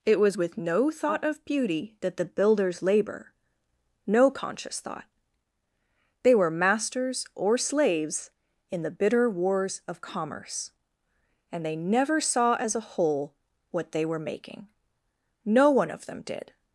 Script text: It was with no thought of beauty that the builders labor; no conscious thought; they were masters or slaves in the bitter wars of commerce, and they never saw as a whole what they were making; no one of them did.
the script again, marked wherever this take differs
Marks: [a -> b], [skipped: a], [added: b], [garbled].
It was with no thought of beauty that the builders labor; no conscious thought; they were masters or slaves in the bitter wars of commerce, and they never saw as a whole what they were making; no one of them did.